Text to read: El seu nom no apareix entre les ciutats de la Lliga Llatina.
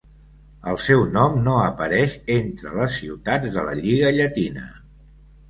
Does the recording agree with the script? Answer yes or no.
yes